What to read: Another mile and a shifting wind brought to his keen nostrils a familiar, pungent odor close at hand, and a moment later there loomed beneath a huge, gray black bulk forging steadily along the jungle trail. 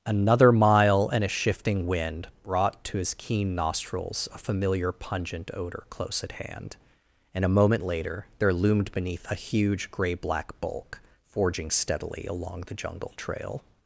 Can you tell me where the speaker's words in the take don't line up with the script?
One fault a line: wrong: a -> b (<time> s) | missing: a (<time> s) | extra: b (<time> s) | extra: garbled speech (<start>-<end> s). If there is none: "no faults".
no faults